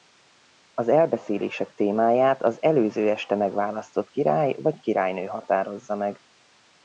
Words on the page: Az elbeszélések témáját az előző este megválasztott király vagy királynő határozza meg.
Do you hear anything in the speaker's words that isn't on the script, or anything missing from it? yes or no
no